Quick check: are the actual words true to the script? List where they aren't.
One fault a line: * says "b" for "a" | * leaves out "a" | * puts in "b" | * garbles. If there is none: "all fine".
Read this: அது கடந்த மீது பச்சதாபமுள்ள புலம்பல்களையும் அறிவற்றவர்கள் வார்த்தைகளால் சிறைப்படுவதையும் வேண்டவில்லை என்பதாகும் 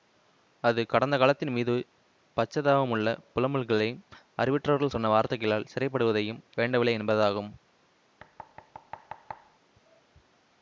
* puts in "காலத்தின்"
* puts in "சொன்ன"